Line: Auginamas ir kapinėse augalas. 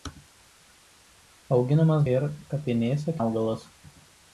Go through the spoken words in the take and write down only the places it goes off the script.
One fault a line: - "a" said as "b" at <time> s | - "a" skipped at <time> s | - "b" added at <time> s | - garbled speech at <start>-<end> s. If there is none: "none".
none